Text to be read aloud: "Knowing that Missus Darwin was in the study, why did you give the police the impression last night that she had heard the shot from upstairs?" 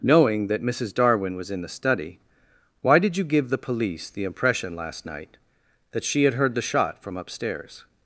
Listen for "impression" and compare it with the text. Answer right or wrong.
right